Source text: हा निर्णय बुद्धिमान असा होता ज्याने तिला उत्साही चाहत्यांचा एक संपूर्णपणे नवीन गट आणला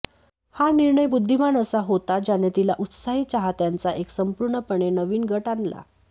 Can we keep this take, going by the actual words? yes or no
yes